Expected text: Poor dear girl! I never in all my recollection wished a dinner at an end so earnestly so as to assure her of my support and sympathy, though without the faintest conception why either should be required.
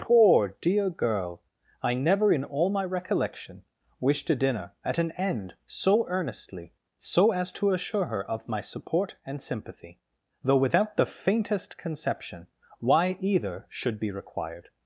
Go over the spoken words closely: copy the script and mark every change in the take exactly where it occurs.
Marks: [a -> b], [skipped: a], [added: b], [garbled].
Poor dear girl! I never in all my recollection wished a dinner at an end so earnestly so as to assure her of my support and sympathy, though without the faintest conception why either should be required.